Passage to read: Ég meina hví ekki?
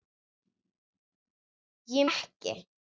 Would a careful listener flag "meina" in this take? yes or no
yes